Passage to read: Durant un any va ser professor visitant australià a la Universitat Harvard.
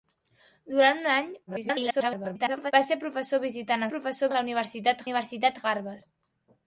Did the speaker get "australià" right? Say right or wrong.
wrong